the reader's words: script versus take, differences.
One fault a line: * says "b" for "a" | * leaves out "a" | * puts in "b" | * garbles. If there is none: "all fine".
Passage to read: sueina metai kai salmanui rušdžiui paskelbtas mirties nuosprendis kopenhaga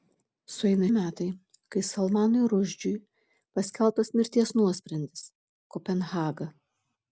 all fine